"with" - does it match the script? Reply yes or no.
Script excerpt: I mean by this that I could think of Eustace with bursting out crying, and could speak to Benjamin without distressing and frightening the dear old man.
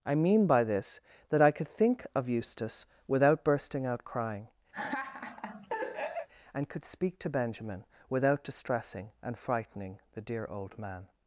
no